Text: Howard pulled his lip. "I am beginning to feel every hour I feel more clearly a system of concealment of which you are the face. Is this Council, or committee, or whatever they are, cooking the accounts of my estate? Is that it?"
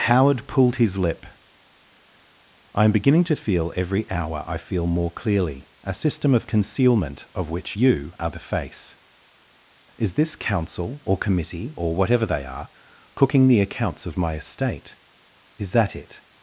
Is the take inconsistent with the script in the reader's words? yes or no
no